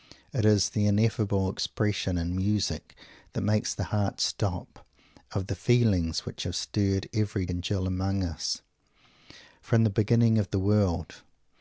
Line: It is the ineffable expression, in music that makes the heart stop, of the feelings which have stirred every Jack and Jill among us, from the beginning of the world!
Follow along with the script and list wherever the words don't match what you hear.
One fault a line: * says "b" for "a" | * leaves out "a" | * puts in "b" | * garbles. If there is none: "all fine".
* leaves out "Jack"